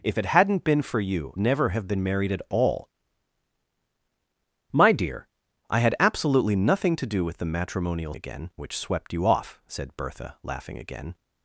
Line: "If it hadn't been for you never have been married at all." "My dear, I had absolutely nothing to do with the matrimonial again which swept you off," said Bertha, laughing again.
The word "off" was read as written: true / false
true